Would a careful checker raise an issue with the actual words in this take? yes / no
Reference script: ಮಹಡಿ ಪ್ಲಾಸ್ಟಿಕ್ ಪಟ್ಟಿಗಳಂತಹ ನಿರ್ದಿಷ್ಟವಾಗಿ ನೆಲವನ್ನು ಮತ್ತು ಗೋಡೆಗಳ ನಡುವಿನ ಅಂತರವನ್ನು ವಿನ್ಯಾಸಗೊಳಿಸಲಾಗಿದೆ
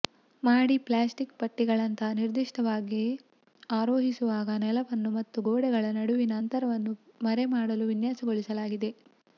yes